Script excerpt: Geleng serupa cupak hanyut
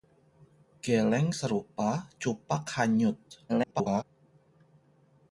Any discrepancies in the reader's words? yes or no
yes